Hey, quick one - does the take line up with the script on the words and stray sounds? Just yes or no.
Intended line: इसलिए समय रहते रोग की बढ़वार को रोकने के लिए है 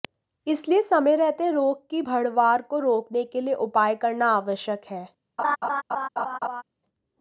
no